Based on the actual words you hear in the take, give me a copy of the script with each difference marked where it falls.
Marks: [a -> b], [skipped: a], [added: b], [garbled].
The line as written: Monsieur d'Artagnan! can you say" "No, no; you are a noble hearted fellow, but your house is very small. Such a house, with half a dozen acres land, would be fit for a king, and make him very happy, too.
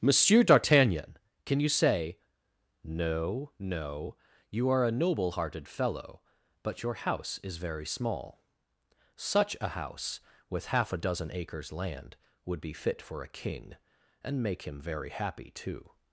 Monsieur d'Artagnan! can you say" "No, no; you are a noble hearted fellow, but your house is very small. Such a house, with half a dozen acres land, would be fit for a king, and make him very happy, too.